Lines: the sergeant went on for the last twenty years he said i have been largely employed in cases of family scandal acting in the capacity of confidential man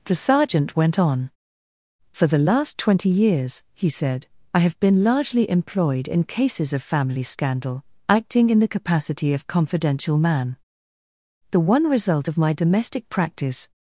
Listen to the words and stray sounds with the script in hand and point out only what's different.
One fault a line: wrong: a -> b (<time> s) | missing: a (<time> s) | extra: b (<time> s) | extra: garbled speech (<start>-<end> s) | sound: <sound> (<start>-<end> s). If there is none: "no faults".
extra: the one result of my domestic practice (11.5 s)